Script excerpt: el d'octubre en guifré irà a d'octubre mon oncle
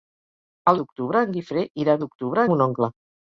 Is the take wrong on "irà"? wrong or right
right